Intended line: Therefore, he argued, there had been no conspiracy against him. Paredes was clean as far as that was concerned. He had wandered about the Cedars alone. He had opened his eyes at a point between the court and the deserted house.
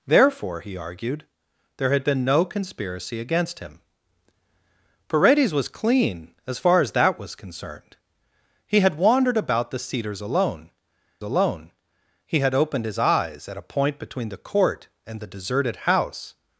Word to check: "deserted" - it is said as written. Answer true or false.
true